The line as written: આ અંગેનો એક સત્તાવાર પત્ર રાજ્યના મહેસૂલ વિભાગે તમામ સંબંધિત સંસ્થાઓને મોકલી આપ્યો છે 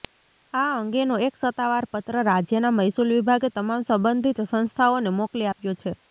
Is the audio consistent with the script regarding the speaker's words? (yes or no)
yes